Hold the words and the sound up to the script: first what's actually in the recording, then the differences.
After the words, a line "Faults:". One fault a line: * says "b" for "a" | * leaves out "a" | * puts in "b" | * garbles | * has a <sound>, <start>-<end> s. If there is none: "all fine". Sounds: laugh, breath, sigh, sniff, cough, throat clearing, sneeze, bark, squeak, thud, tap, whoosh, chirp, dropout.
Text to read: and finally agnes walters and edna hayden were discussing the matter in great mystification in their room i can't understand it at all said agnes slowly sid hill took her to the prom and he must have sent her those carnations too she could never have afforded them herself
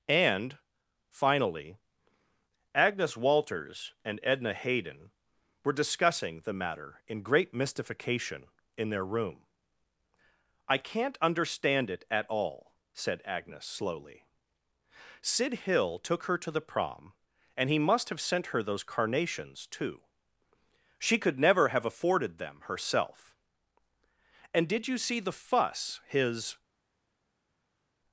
and finally agnes walters and edna hayden were discussing the matter in great mystification in their room i can't understand it at all said agnes slowly sid hill took her to the prom and he must have sent her those carnations too she could never have afforded them herself and did you see the fuss his
Faults:
* puts in "and did you see the fuss his"